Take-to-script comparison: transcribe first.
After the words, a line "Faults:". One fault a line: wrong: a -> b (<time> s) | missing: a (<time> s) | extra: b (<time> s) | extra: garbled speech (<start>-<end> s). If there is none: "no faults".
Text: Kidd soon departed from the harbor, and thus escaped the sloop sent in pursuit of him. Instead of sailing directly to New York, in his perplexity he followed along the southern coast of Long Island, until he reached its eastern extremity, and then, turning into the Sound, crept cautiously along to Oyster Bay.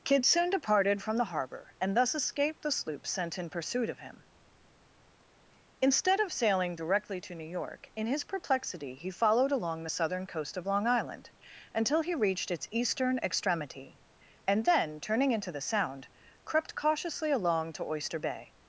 Kidd soon departed from the harbor, and thus escaped the sloop sent in pursuit of him. Instead of sailing directly to New York, in his perplexity he followed along the southern coast of Long Island, until he reached its eastern extremity, and then, turning into the Sound, crept cautiously along to Oyster Bay.
Faults:
no faults